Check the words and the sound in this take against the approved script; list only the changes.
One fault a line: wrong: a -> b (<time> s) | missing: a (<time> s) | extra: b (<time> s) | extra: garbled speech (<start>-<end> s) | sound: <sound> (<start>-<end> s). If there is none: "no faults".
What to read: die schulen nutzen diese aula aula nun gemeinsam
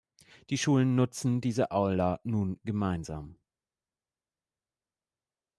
missing: aula (2.2 s)